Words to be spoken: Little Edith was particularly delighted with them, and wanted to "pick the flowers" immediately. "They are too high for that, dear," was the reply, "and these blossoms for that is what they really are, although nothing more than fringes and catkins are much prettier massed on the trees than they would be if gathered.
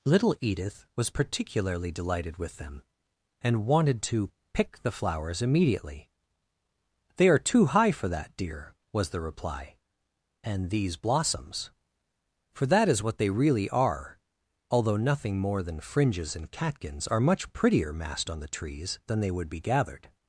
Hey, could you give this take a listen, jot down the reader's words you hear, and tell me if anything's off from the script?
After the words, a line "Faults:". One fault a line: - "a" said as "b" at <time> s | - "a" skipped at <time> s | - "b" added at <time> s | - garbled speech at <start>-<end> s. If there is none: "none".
Little Edith was particularly delighted with them, and wanted to "pick the flowers" immediately. "They are too high for that, dear," was the reply, "and these blossoms for that is what they really are, although nothing more than fringes and catkins are much prettier massed on the trees than they would be gathered.
Faults:
- "if" skipped at 19.6 s